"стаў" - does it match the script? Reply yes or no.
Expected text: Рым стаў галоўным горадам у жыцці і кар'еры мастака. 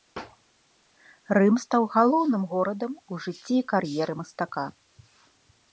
yes